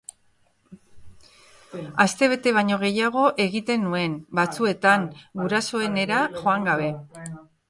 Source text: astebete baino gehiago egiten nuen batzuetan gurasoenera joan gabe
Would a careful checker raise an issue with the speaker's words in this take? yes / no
no